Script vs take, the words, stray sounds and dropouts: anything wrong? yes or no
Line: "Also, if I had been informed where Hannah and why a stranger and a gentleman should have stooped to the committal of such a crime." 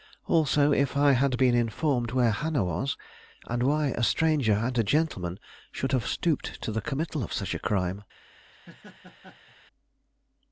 yes